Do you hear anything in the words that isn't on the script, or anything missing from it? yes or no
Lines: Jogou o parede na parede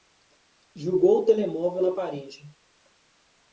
yes